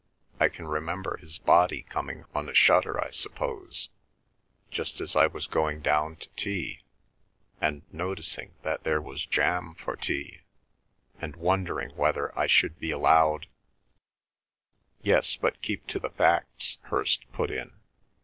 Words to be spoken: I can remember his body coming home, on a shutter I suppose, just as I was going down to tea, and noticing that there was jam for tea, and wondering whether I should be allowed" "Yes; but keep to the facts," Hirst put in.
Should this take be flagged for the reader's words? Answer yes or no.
yes